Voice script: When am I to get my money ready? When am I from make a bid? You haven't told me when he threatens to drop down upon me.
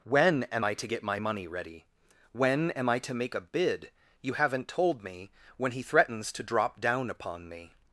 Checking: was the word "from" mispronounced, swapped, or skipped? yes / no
yes